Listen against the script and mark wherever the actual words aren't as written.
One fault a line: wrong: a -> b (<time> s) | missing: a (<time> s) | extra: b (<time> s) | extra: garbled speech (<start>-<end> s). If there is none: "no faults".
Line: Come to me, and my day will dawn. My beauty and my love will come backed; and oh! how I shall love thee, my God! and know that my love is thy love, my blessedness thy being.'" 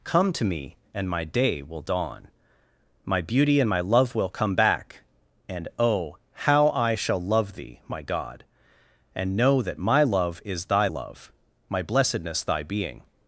wrong: backed -> back (4.5 s)